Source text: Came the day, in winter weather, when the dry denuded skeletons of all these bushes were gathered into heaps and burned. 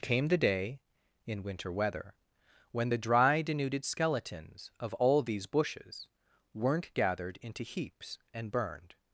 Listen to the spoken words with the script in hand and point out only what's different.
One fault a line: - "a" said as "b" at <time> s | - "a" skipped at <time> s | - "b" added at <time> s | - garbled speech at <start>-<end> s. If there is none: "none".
- "were" said as "weren't" at 6.5 s